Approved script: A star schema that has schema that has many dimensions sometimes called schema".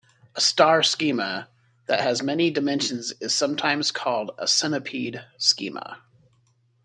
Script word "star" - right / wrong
right